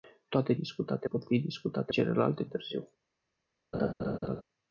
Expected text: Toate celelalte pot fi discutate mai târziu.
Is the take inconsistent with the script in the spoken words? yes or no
yes